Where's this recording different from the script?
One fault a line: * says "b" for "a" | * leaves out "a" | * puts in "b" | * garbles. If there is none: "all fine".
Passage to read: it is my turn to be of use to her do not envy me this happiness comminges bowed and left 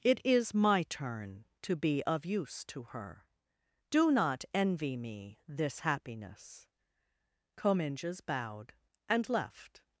all fine